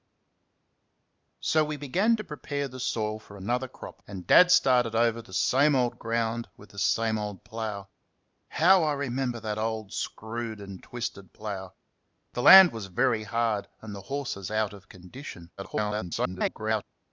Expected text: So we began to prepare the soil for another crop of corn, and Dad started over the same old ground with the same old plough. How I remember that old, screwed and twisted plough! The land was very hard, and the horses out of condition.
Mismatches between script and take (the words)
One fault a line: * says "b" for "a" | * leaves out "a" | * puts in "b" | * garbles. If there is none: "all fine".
* leaves out "of corn"
* garbles